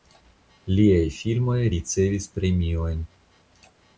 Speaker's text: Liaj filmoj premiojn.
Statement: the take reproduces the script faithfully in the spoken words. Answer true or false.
false